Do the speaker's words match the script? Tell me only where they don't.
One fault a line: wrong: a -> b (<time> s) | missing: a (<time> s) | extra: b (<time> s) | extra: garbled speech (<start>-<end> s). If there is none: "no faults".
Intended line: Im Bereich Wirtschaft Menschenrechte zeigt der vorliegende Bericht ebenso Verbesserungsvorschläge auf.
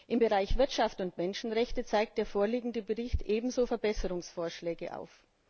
extra: und (1.0 s)